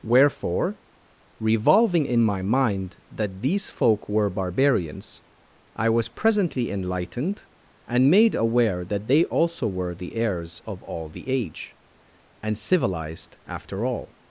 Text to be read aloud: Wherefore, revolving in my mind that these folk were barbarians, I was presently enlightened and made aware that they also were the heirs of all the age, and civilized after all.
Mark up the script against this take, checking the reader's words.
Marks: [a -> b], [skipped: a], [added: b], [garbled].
Wherefore, revolving in my mind that these folk were barbarians, I was presently enlightened and made aware that they also were the heirs of all the age, and civilized after all.